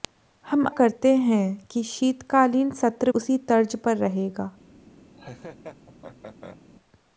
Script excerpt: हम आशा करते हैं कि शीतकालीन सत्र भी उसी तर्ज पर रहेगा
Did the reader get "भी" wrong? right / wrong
wrong